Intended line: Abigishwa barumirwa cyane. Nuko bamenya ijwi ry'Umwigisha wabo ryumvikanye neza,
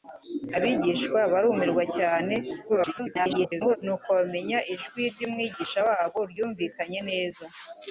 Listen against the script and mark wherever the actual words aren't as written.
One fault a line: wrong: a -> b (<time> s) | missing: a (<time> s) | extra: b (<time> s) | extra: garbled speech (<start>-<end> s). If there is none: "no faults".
extra: garbled speech (2.7-3.8 s)